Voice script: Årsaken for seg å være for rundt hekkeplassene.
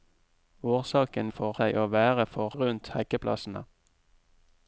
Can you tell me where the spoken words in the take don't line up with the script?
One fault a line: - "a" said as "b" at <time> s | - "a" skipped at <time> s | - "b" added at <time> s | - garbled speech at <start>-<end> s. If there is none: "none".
none